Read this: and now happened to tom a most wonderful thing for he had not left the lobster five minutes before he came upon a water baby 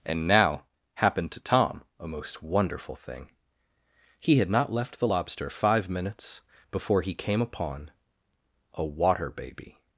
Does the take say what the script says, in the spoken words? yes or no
no